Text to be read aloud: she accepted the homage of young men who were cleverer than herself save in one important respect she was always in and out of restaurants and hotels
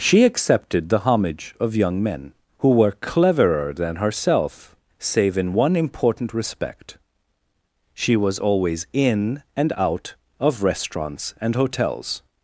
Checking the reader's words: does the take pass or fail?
pass